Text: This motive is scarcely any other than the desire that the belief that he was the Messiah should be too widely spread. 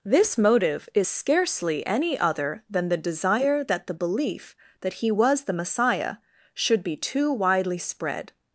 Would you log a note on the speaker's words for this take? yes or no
no